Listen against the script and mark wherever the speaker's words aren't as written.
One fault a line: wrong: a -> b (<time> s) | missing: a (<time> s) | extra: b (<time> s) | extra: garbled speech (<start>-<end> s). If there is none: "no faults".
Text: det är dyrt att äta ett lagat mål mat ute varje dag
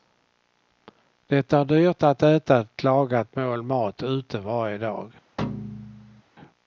no faults